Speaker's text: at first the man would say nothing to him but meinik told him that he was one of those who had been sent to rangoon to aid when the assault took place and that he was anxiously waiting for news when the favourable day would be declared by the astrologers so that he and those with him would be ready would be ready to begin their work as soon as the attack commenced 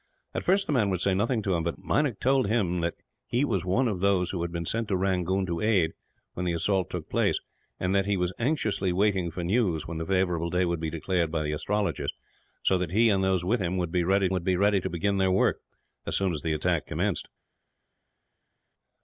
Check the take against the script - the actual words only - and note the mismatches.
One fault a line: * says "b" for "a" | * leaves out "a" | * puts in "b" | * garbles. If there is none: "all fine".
all fine